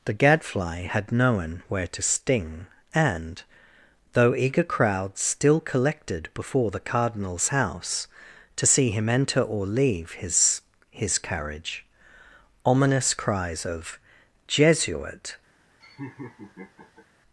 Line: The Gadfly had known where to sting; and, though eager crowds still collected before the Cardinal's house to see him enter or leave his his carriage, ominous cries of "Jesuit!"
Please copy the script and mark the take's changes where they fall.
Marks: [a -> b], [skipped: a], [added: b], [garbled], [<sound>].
The Gadfly had known where to sting; and, though eager crowds still collected before the Cardinal's house to see him enter or leave his his carriage, ominous cries of "Jesuit!" [laugh]